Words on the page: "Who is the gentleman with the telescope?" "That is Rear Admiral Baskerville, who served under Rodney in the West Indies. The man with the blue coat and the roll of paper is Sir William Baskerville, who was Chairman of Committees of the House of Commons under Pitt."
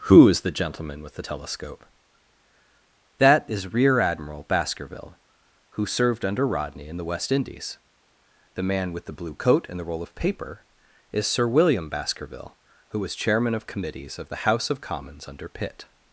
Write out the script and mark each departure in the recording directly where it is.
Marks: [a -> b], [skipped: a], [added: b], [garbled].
"Who is the gentleman with the telescope?" "That is Rear Admiral Baskerville, who served under Rodney in the West Indies. The man with the blue coat and the roll of paper is Sir William Baskerville, who was Chairman of Committees of the House of Commons under Pitt."